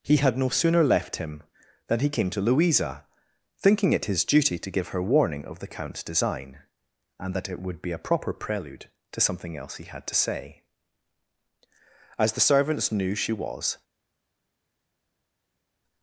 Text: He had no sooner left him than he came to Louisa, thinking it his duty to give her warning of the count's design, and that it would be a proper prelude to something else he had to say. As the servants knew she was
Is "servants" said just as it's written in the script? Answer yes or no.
yes